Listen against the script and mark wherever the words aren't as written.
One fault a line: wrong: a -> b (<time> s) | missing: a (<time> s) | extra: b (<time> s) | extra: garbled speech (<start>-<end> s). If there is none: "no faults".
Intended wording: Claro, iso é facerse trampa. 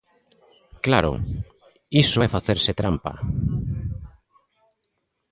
no faults